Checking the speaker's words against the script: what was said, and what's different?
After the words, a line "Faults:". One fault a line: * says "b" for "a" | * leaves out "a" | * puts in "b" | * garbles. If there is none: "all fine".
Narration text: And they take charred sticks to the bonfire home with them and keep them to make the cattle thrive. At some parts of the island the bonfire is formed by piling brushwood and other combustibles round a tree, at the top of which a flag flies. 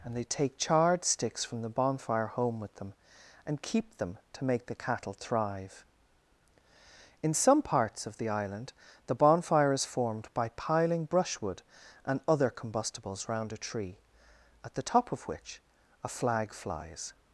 And they take charred sticks from the bonfire home with them and keep them to make the cattle thrive. In some parts of the island the bonfire is formed by piling brushwood and other combustibles round a tree, at the top of which a flag flies.
Faults:
* says "from" for "to"
* says "In" for "At"